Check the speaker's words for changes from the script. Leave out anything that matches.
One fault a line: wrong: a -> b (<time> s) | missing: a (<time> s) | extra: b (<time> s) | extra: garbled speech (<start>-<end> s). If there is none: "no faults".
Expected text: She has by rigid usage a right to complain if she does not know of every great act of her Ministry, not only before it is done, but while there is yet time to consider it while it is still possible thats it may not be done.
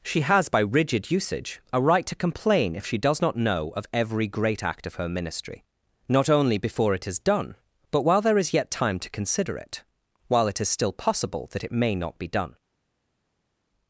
wrong: thats -> that (11.5 s)